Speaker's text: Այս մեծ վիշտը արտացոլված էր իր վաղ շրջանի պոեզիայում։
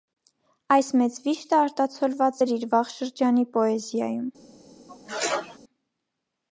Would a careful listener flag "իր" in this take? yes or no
no